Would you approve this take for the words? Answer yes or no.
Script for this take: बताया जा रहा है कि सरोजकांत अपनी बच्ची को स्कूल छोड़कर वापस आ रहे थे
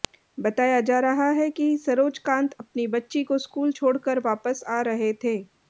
yes